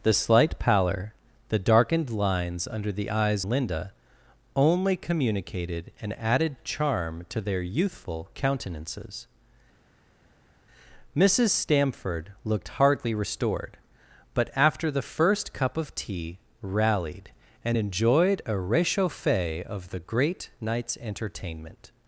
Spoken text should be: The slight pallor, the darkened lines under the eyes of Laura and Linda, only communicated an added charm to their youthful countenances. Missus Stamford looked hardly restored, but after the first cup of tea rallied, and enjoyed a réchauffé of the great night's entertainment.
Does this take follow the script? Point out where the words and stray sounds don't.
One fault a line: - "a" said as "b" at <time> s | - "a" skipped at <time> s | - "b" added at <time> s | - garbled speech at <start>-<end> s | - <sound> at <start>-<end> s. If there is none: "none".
- "of Laura and" skipped at 3.5 s